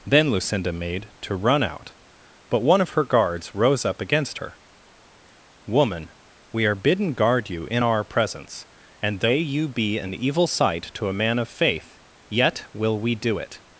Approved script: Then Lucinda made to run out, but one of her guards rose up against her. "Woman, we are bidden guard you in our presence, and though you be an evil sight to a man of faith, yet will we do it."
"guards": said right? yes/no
yes